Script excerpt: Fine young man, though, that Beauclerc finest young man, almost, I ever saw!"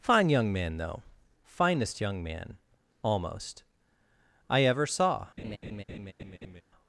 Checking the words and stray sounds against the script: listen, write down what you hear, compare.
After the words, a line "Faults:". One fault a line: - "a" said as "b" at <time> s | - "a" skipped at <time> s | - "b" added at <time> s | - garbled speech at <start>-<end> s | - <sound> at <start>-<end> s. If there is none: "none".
Fine young man, though, finest young man, almost, I ever saw!"
Faults:
- "that Beauclerc" skipped at 1.0 s
- laugh at 5.4-6.6 s